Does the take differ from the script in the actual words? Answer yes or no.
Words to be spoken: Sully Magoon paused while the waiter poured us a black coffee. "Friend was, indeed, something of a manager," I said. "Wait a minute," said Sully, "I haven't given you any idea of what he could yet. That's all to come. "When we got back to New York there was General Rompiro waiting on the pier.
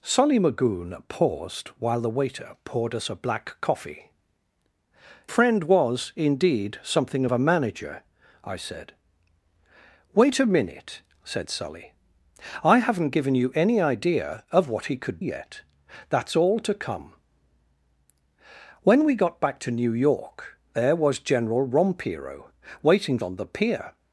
no